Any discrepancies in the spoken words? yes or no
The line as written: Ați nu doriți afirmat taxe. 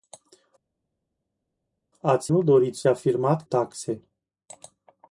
no